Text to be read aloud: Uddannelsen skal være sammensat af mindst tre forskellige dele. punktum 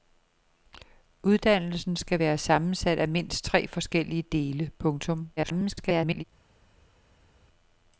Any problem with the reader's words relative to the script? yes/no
yes